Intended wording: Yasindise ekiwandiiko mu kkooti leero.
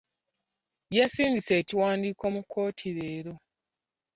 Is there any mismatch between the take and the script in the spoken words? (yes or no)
no